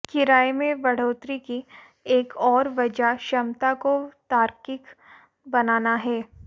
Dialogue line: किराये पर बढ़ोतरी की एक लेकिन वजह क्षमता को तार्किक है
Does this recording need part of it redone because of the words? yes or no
yes